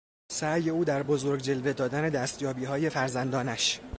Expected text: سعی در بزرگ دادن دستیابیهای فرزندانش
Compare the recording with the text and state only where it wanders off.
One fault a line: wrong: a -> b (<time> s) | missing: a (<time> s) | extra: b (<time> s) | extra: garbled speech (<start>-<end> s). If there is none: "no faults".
extra: او (0.7 s)
extra: جلوه (1.4 s)